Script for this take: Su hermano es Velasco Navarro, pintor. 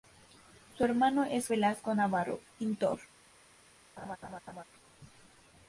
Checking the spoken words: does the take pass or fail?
pass